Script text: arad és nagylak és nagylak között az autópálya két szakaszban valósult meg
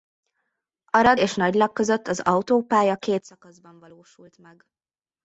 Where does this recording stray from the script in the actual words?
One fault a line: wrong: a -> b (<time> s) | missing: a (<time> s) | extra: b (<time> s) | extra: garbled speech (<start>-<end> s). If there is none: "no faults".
missing: és nagylak (1.7 s)